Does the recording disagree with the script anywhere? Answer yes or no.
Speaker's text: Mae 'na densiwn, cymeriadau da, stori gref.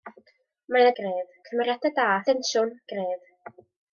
yes